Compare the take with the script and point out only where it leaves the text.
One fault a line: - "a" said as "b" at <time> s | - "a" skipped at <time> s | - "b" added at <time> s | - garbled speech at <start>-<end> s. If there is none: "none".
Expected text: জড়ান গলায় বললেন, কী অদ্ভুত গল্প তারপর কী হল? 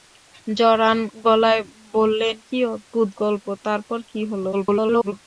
- garbled speech at 4.5-5.1 s